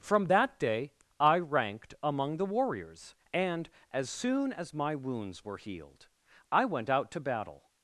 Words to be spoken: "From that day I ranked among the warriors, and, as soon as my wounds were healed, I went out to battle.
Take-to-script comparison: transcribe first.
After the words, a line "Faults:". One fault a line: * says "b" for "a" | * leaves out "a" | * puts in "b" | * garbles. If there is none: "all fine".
"From that day I ranked among the warriors, and, as soon as my wounds were healed, I went out to battle.
Faults:
all fine